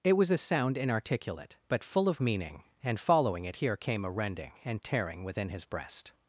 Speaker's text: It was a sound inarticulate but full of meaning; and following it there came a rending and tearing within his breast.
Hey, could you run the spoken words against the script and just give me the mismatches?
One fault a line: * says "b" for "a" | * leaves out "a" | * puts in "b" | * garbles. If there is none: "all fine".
* says "here" for "there"